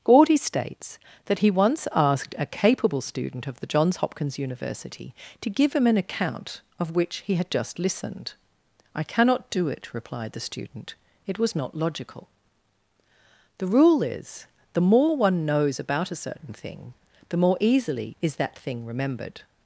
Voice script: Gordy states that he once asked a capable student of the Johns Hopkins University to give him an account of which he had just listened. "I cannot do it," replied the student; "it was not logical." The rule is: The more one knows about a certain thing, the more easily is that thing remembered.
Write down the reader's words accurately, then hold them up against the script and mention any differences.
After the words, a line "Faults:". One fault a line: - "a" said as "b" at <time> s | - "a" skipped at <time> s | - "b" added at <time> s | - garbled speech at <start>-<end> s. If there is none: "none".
Gordy states that he once asked a capable student of the Johns Hopkins University to give him an account of which he had just listened. "I cannot do it," replied the student; "it was not logical." The rule is: The more one knows about a certain thing, the more easily is that thing remembered.
Faults:
none